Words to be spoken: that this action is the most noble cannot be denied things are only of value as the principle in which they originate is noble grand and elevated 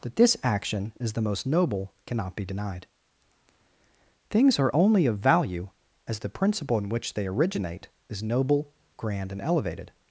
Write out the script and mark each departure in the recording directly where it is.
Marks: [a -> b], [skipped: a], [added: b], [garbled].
that this action is the most noble cannot be denied things are only of value as the principle in which they originate is noble grand and elevated